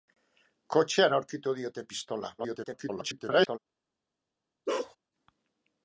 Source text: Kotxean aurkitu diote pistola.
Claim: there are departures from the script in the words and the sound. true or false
true